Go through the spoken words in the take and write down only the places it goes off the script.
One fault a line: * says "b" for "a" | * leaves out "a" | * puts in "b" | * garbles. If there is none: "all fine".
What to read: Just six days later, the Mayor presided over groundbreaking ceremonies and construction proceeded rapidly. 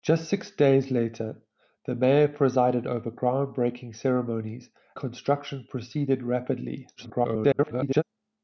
* leaves out "and"
* garbles